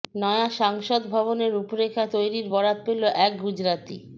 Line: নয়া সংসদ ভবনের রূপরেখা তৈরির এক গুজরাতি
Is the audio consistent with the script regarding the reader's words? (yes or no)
no